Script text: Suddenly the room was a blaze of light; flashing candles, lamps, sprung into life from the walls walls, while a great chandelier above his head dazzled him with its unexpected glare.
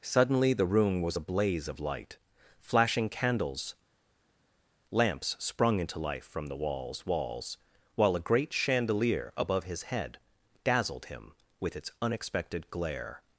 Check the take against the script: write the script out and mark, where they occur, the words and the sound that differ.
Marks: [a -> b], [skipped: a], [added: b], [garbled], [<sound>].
Suddenly the room was a blaze of light; flashing candles, lamps, sprung into life from the walls walls, while a great chandelier above his head dazzled him with its unexpected glare.